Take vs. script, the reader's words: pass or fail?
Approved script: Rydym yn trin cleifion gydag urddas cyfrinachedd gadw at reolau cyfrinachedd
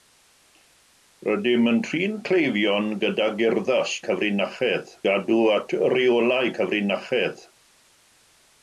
pass